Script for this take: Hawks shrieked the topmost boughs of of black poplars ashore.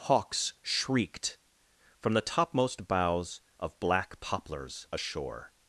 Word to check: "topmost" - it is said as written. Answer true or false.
true